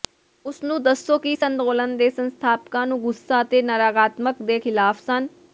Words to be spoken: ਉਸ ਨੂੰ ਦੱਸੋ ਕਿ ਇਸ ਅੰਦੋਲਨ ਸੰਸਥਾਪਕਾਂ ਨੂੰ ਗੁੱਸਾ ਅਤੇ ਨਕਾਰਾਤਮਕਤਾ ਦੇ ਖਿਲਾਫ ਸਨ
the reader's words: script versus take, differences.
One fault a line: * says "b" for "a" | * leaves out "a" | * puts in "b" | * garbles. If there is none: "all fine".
* puts in "ਦੇ"